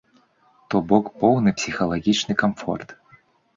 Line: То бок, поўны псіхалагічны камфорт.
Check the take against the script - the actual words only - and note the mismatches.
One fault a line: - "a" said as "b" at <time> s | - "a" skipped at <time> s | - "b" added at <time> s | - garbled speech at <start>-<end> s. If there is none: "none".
none